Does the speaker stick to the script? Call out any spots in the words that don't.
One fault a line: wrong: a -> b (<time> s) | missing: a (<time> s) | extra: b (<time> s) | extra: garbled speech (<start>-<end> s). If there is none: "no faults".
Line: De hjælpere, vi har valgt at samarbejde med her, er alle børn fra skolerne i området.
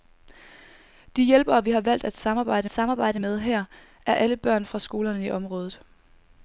extra: samarbejde (2.7 s)